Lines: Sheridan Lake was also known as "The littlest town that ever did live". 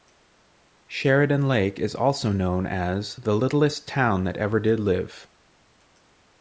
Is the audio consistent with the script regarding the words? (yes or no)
no